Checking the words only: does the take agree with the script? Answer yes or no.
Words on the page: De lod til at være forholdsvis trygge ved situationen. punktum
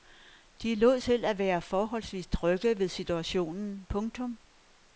yes